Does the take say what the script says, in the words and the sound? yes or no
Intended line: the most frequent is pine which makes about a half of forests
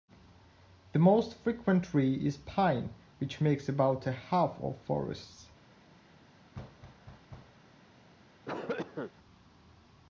no